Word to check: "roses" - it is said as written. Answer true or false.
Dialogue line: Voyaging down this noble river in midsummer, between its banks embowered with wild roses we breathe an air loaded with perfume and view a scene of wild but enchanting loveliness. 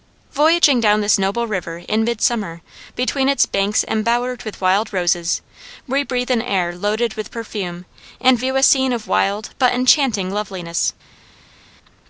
true